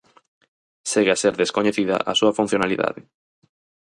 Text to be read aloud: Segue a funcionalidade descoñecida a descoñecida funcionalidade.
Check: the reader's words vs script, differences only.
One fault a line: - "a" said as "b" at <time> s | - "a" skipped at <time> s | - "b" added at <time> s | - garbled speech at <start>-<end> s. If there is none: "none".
- "funcionalidade" said as "ser" at 1.2 s
- "descoñecida" said as "súa" at 2.2 s